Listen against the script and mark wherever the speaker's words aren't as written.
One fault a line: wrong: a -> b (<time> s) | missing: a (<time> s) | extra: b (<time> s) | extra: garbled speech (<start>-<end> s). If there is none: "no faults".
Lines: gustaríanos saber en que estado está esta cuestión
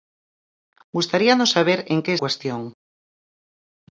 missing: estado está esta (2.1 s)